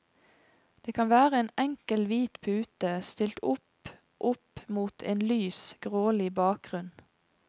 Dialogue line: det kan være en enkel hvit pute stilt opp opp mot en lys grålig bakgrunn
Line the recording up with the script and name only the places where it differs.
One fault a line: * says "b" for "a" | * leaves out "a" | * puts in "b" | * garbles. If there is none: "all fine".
all fine